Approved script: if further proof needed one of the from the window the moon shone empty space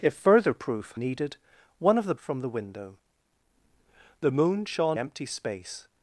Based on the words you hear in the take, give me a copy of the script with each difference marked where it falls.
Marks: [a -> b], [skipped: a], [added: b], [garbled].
if further proof needed one of the from the window the moon shone empty space